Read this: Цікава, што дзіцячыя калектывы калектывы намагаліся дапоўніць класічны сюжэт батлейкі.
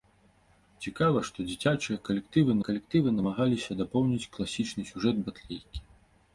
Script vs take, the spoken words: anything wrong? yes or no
no